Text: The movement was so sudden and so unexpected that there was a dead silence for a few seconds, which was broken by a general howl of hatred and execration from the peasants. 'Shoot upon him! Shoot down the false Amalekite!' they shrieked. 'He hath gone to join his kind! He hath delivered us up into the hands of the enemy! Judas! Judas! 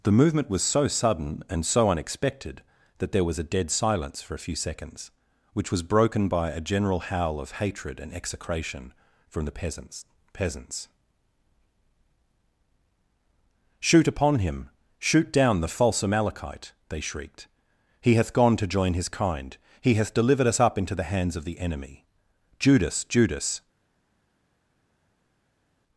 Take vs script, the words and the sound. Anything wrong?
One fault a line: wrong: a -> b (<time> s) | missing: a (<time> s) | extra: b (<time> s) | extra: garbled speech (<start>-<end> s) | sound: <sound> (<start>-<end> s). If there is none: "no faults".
extra: peasants (10.3 s)